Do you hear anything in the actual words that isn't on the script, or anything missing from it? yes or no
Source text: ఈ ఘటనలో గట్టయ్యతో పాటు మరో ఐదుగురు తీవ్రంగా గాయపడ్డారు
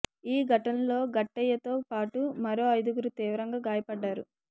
no